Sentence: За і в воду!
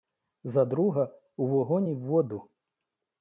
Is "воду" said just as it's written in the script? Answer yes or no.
yes